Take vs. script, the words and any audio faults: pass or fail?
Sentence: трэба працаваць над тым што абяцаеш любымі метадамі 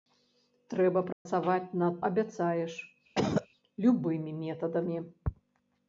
fail